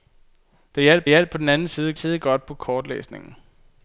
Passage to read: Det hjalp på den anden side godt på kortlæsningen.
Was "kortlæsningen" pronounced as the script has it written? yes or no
yes